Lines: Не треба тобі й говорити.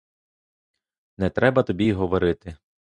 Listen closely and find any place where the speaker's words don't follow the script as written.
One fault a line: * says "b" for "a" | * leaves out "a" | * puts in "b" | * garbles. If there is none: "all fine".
all fine